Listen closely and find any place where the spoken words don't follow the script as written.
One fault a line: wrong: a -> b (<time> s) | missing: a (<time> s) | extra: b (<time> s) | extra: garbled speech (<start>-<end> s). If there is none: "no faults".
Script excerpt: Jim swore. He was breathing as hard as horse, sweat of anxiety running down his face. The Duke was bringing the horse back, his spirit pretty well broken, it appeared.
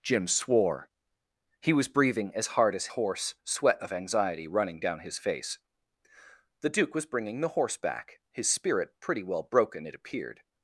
no faults